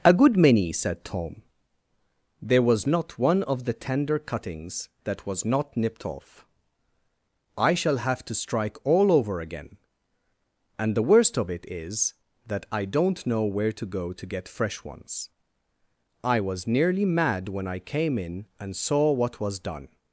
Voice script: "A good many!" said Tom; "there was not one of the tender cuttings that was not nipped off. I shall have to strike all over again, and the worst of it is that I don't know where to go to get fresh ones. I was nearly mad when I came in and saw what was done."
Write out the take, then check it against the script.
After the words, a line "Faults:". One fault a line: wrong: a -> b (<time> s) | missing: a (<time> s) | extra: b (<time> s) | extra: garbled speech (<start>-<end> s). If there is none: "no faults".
"A good many!" said Tom; "there was not one of the tender cuttings that was not nipped off. I shall have to strike all over again, and the worst of it is that I don't know where to go to get fresh ones. I was nearly mad when I came in and saw what was done."
Faults:
no faults